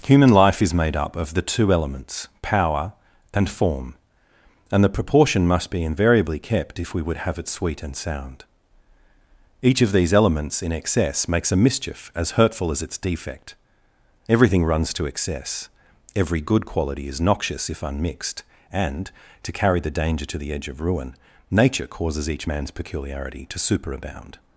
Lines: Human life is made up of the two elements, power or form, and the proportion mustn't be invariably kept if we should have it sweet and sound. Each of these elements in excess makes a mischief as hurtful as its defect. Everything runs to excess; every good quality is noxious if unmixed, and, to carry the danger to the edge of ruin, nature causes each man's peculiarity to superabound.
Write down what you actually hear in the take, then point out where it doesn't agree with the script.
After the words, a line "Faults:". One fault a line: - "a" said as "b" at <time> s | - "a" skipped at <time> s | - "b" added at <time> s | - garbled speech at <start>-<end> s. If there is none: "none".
Human life is made up of the two elements, power and form, and the proportion must be invariably kept if we would have it sweet and sound. Each of these elements in excess makes a mischief as hurtful as its defect. Everything runs to excess; every good quality is noxious if unmixed, and, to carry the danger to the edge of ruin, nature causes each man's peculiarity to superabound.
Faults:
- "or" said as "and" at 3.3 s
- "mustn't" said as "must" at 5.5 s
- "should" said as "would" at 7.0 s